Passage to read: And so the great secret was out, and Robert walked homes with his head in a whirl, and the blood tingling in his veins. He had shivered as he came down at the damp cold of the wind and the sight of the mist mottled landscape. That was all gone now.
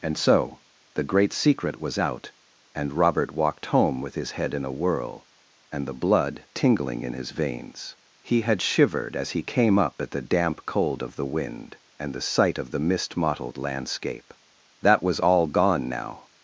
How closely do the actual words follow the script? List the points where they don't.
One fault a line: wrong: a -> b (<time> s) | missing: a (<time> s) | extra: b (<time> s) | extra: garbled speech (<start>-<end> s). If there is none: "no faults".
wrong: homes -> home (3.7 s)
wrong: down -> up (9.8 s)